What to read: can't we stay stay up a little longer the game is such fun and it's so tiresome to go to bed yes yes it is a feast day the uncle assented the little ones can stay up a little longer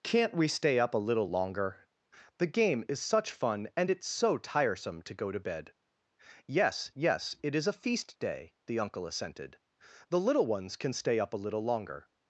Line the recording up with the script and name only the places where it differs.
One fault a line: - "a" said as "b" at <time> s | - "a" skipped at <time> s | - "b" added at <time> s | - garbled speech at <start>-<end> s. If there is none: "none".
- "stay" skipped at 0.8 s